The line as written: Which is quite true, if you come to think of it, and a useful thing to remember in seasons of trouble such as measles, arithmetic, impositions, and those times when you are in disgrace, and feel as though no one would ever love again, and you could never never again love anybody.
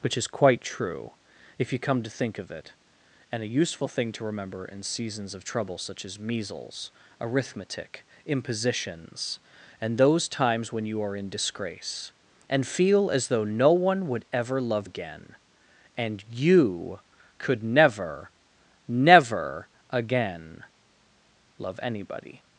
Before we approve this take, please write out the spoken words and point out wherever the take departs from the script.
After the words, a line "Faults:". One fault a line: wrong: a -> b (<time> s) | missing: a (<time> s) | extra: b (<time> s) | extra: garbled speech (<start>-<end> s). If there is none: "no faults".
Which is quite true, if you come to think of it, and a useful thing to remember in seasons of trouble such as measles, arithmetic, impositions, and those times when you are in disgrace, and feel as though no one would ever love again, and you could never never again love anybody.
Faults:
no faults